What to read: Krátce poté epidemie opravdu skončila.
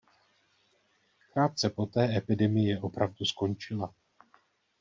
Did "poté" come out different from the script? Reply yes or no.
no